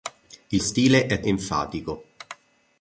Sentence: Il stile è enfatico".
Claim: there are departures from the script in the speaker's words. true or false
false